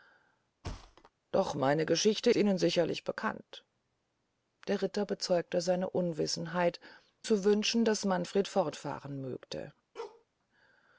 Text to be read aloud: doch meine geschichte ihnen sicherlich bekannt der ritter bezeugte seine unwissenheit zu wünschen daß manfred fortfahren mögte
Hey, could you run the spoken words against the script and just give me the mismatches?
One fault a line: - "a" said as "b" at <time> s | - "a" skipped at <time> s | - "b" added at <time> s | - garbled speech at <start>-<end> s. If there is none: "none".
none